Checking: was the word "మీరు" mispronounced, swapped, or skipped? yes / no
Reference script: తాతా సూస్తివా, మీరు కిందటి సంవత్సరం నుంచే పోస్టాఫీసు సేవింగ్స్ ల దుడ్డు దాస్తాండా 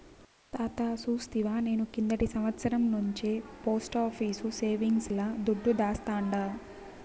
yes